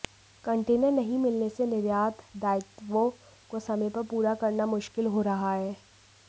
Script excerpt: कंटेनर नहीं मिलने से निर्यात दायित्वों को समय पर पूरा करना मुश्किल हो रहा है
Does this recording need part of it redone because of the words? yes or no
no